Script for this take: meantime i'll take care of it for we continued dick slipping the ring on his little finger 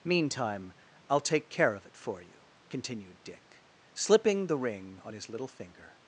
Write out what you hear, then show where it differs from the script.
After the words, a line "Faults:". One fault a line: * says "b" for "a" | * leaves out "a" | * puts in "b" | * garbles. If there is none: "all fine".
meantime i'll take care of it for you continued dick slipping the ring on his little finger
Faults:
* says "you" for "we"